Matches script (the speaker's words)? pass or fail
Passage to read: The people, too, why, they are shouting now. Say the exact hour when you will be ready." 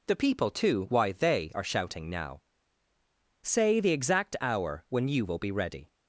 pass